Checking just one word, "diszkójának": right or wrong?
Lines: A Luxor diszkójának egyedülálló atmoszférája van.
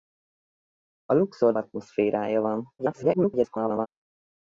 wrong